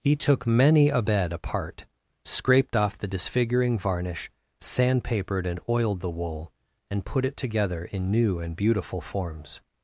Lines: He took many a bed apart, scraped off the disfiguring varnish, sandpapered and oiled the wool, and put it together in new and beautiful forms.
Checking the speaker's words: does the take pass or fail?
pass